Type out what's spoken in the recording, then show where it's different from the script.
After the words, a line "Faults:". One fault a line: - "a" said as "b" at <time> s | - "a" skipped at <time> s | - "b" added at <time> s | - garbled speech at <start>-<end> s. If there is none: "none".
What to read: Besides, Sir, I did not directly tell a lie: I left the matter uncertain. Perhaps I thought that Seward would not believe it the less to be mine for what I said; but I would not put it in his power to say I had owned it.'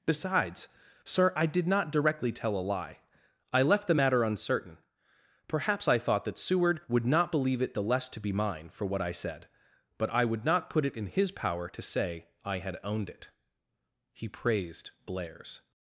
Besides, Sir, I did not directly tell a lie: I left the matter uncertain. Perhaps I thought that Seward would not believe it the less to be mine for what I said; but I would not put it in his power to say I had owned it.' He praised Blair's
Faults:
- "He praised Blair's" added at 14.1 s